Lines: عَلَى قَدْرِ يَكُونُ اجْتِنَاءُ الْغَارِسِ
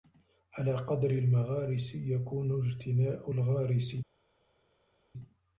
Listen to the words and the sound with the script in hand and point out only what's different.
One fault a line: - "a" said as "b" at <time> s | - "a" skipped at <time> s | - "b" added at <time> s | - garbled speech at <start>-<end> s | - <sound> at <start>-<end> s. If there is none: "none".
- "الْمَغَارِسِ" added at 1.1 s